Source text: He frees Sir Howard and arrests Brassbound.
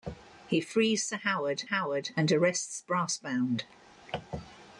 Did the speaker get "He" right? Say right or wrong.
right